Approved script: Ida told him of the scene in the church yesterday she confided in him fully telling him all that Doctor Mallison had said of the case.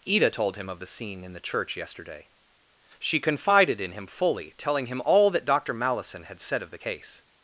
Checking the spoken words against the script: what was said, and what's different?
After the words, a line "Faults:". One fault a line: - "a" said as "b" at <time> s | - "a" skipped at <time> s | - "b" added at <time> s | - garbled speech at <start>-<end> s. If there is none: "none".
Ida told him of the scene in the church yesterday she confided in him fully telling him all that Doctor Mallison had said of the case.
Faults:
none